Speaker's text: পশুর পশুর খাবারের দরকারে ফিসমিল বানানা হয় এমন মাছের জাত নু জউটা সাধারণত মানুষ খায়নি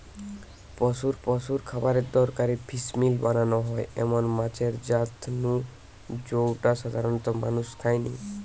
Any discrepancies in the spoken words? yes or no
no